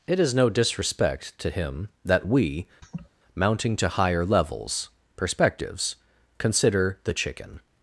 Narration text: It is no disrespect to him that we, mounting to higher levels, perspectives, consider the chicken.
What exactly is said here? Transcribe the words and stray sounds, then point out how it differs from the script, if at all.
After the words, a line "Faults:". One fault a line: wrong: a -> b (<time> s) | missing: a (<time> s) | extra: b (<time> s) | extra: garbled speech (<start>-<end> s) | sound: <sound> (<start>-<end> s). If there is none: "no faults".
It is no disrespect to him that we, mounting to higher levels, perspectives, consider the chicken.
Faults:
sound: laugh (2.8-3.1 s)